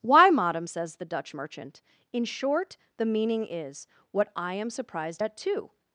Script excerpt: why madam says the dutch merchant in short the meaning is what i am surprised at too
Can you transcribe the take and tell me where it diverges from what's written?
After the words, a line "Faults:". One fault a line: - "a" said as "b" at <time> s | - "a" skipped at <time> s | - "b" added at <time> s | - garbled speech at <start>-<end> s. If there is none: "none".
why madam says the dutch merchant in short the meaning is what i am surprised at too
Faults:
none